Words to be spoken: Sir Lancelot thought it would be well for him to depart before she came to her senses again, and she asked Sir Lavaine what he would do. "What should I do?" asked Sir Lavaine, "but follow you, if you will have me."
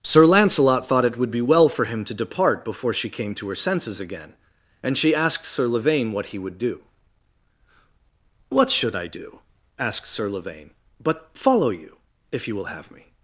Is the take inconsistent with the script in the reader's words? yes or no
no